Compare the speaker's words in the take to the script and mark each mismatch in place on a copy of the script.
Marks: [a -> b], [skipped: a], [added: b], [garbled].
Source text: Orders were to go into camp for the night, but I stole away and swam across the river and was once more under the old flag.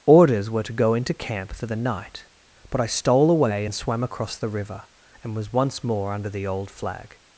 Orders were to go into camp for the night, but I stole away and swam across the river and was once more under the old flag.